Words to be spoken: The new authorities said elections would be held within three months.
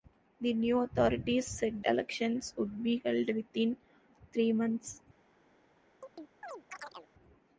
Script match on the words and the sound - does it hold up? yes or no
no